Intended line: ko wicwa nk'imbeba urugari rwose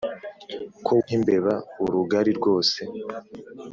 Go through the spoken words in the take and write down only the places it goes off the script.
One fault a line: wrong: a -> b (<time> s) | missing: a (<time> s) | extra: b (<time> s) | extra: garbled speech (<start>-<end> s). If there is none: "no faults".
missing: wicwa (0.9 s)